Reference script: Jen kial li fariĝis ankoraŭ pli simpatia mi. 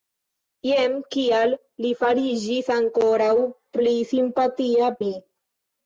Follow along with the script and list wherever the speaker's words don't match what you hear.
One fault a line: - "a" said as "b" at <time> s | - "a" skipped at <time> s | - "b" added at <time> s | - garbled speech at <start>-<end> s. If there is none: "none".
none